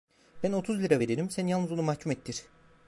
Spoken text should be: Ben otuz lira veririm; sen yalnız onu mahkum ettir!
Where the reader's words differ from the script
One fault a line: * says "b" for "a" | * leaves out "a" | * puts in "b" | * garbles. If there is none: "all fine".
all fine